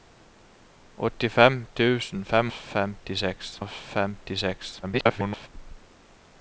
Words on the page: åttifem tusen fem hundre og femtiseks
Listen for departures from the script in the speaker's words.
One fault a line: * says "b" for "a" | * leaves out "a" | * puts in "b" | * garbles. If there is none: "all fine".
* says "femtiseks" for "hundre"
* garbles